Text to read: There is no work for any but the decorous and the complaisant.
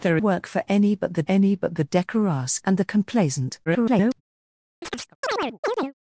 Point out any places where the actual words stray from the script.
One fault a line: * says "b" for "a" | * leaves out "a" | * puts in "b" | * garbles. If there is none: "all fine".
* says "work for any but the" for "is no work for"
* garbles